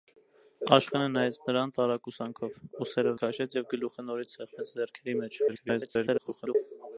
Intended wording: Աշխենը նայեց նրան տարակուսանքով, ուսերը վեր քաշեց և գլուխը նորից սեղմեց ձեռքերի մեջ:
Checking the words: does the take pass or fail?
fail